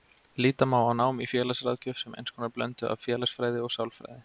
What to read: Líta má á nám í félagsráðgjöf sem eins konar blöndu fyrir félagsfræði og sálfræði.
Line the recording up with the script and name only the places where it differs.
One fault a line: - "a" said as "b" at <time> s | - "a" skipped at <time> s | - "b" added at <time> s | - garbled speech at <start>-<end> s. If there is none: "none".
- "fyrir" said as "af" at 2.9 s